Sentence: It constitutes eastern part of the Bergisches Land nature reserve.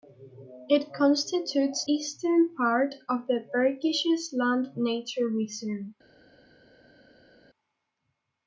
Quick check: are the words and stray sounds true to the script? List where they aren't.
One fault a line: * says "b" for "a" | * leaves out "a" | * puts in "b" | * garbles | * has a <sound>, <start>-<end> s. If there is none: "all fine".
all fine